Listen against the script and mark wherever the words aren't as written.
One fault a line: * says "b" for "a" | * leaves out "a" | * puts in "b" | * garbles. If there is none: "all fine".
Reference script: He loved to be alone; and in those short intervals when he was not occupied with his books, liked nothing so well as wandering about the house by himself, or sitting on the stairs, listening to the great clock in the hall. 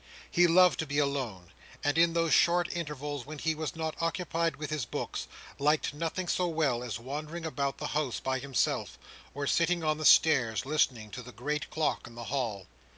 all fine